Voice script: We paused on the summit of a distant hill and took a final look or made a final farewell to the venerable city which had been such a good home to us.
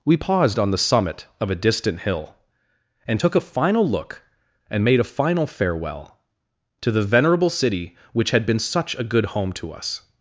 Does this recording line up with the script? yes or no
no